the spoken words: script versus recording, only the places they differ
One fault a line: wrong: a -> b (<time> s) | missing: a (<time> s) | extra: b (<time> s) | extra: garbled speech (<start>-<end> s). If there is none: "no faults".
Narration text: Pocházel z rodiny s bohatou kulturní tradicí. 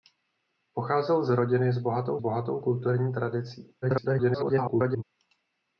extra: bohatou (2.2 s)
extra: garbled speech (3.8-5.0 s)